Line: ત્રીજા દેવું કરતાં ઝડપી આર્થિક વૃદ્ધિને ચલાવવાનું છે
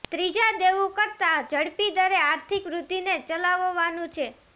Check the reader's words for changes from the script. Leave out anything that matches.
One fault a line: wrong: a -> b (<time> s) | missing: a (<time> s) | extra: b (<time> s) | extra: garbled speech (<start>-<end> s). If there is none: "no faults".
extra: દરે (1.9 s)